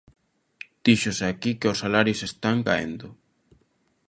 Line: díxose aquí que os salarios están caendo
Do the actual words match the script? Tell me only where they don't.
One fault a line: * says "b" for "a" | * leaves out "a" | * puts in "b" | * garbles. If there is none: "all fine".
all fine